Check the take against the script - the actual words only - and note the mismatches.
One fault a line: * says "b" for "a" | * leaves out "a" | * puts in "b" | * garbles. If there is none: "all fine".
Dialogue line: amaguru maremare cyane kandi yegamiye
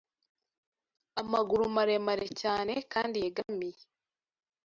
all fine